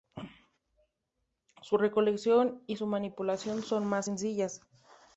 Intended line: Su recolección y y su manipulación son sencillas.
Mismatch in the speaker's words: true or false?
true